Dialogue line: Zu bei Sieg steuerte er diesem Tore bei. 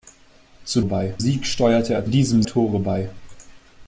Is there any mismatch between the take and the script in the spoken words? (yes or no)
no